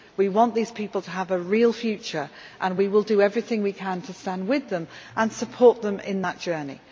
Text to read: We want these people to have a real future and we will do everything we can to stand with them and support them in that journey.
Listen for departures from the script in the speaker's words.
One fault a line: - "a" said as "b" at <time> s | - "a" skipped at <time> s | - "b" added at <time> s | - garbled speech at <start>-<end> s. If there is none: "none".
none